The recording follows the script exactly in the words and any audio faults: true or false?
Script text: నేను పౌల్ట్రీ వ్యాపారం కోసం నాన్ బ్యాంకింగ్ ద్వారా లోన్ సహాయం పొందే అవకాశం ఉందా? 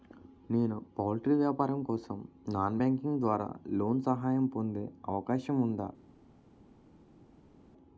true